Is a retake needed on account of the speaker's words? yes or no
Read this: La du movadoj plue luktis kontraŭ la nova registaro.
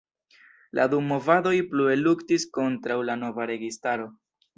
no